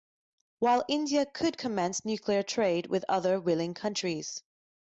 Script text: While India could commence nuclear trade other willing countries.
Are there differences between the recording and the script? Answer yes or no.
yes